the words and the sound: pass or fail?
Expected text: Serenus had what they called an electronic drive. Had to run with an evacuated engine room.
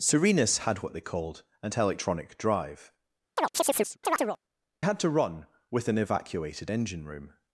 fail